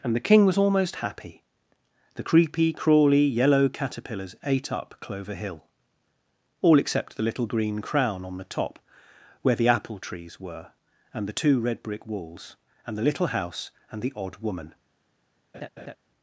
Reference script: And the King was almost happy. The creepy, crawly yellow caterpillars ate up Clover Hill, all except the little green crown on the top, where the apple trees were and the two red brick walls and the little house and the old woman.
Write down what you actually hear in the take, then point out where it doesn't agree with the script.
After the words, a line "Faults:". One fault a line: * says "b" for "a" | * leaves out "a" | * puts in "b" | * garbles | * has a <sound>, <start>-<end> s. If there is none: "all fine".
And the King was almost happy. The creepy, crawly yellow caterpillars ate up Clover Hill, all except the little green crown on the top, where the apple trees were and the two red brick walls and the little house and the odd woman.
Faults:
* says "odd" for "old"
* has a laugh, 15.5-16.0 s